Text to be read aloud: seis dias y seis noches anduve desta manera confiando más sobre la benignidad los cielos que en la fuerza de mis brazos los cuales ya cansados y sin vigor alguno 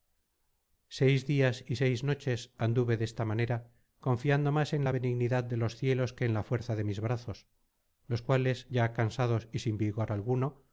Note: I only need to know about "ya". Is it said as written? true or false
true